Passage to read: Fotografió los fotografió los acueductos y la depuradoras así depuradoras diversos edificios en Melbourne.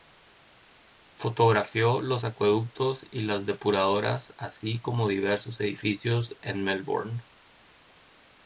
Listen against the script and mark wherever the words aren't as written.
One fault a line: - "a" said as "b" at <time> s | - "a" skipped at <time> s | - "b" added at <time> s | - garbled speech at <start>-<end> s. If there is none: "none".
- "fotografió los" skipped at 2.2 s
- "la" said as "las" at 3.2 s
- "depuradoras" said as "como" at 4.8 s